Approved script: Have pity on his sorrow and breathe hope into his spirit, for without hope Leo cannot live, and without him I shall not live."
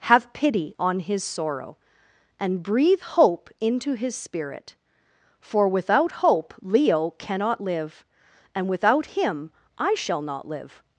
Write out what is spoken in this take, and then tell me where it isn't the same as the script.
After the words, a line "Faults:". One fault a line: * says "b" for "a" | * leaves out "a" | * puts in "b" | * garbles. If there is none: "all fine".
Have pity on his sorrow and breathe hope into his spirit, for without hope Leo cannot live, and without him I shall not live."
Faults:
all fine